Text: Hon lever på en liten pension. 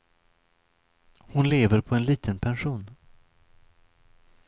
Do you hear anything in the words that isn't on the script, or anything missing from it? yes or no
no